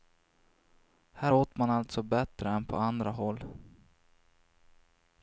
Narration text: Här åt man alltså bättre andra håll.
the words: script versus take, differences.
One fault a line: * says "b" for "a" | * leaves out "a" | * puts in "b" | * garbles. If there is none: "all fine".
* puts in "än på"